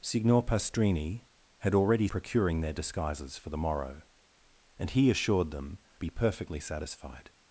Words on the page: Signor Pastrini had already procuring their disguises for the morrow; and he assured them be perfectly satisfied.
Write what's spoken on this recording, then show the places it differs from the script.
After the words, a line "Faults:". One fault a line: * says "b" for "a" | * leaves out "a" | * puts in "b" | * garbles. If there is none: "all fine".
Signor Pastrini had already procuring their disguises for the morrow; and he assured them be perfectly satisfied.
Faults:
all fine